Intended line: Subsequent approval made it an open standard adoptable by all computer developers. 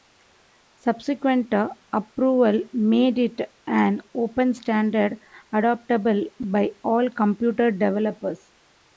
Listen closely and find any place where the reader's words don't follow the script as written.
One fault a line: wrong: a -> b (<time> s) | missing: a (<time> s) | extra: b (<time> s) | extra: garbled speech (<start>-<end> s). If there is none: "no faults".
no faults